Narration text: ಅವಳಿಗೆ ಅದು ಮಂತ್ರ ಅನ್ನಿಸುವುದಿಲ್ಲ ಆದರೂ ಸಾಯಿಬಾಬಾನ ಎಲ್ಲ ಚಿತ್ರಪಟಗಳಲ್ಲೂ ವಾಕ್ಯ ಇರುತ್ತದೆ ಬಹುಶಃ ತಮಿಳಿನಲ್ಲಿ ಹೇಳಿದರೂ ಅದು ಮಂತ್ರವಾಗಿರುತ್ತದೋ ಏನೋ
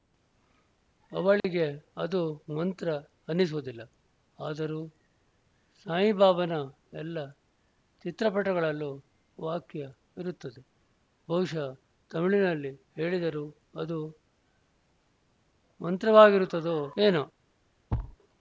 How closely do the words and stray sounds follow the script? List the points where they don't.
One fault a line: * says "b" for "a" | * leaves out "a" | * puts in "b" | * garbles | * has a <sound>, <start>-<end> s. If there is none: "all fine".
* has a dropout, 1.4-1.4 s
* has a thud, 17.9-18.2 s